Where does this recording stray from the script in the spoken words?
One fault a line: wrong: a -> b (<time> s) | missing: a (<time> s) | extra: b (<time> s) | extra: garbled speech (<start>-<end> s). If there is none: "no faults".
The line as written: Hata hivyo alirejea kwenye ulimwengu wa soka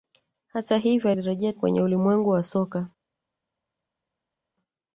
no faults